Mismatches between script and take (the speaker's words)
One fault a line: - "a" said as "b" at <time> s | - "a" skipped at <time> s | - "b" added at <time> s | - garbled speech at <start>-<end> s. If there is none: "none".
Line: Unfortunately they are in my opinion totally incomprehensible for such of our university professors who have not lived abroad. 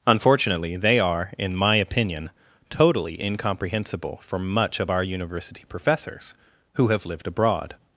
- "such" said as "much" at 4.4 s
- "not" skipped at 7.1 s